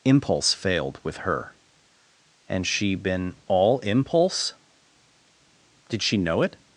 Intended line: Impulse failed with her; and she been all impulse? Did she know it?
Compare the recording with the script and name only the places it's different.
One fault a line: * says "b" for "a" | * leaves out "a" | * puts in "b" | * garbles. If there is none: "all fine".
all fine